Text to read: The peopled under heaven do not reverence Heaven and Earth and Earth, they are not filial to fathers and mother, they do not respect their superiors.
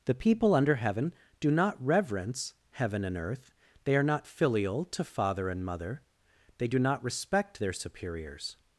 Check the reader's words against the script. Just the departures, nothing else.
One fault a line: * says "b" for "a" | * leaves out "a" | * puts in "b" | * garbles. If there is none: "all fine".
* says "people" for "peopled"
* leaves out "and Earth"
* says "father" for "fathers"